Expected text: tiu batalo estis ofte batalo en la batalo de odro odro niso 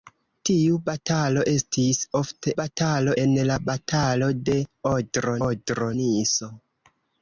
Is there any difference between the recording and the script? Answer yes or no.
no